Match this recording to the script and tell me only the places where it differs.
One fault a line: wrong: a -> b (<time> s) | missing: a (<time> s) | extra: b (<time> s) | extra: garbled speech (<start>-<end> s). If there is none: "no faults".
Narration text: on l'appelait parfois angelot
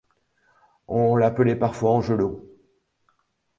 no faults